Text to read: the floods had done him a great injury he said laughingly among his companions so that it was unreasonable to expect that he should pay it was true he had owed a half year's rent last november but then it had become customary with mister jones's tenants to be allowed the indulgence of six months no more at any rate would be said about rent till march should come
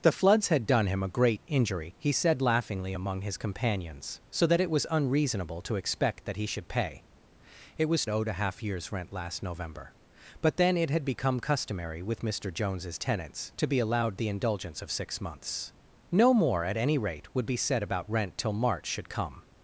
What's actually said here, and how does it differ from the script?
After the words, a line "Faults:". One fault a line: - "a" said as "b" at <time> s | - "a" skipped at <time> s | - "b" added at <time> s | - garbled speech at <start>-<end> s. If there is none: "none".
the floods had done him a great injury he said laughingly among his companions so that it was unreasonable to expect that he should pay it was owed a half year's rent last november but then it had become customary with mister jones's tenants to be allowed the indulgence of six months no more at any rate would be said about rent till march should come
Faults:
- "true he had" skipped at 8.1 s